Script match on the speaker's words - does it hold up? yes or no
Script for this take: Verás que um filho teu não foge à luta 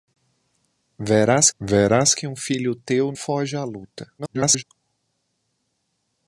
no